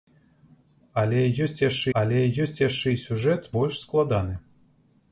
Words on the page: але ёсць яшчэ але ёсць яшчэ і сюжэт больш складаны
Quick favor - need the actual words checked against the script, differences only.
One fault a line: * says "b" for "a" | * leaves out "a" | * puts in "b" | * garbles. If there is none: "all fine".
all fine